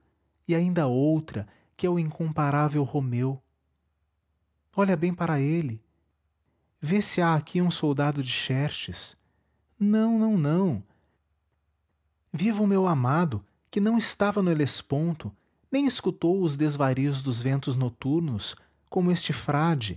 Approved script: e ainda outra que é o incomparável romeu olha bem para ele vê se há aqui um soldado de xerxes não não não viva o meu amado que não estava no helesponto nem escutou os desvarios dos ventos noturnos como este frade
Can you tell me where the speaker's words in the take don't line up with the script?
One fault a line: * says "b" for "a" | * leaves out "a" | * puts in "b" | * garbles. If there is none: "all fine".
all fine